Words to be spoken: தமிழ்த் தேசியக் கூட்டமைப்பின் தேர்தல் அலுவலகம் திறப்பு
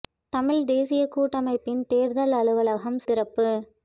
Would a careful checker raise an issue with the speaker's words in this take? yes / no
no